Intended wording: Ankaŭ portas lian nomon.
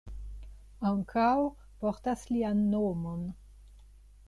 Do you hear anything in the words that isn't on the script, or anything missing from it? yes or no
no